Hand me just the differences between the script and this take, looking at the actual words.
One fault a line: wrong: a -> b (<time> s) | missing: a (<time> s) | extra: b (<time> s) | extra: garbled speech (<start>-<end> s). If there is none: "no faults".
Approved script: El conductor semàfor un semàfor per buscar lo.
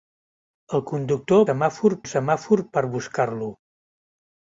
no faults